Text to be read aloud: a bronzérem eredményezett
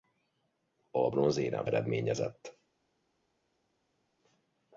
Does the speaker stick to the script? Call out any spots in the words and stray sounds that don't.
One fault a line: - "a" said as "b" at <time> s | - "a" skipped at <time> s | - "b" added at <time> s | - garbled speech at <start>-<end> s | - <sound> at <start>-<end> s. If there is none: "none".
none